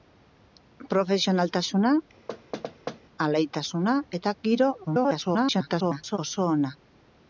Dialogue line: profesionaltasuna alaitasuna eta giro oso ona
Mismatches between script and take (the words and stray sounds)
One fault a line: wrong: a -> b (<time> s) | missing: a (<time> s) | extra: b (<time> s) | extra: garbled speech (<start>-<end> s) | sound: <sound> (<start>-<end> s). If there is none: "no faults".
sound: thud (2.3-3.0 s)
extra: garbled speech (4.8-6.2 s)